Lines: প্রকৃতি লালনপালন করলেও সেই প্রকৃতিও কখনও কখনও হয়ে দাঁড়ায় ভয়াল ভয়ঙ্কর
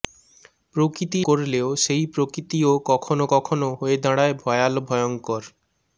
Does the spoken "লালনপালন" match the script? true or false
false